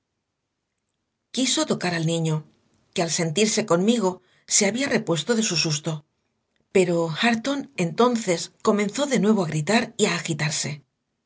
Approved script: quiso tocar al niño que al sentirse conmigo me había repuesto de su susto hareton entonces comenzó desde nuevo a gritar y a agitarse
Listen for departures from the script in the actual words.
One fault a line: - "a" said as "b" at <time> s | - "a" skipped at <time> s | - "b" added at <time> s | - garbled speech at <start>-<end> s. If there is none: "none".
- "me" said as "se" at 4.5 s
- "pero" added at 6.8 s
- "desde" said as "de" at 9.1 s